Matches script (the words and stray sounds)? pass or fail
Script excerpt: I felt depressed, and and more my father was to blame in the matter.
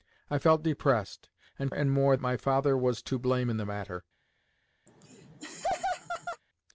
fail